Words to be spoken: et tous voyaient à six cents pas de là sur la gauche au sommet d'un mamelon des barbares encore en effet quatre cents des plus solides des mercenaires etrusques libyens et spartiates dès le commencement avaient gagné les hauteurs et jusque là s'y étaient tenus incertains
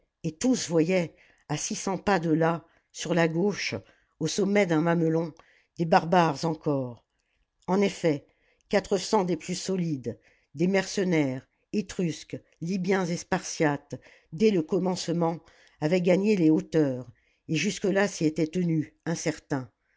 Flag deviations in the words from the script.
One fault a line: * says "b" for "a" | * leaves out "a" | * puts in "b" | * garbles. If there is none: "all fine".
all fine